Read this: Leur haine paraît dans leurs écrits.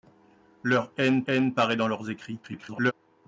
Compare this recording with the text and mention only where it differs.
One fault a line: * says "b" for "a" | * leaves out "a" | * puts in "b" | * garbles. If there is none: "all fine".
* puts in "haine"
* garbles